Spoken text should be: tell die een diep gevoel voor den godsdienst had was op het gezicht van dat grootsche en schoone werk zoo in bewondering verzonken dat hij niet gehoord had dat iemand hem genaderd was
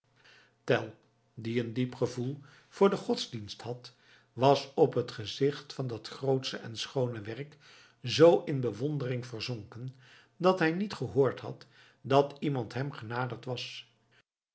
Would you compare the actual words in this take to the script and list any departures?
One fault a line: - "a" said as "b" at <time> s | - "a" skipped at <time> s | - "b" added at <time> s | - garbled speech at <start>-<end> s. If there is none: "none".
none